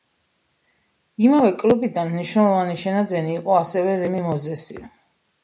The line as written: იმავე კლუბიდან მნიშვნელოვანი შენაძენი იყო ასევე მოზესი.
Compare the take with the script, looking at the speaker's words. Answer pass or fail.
fail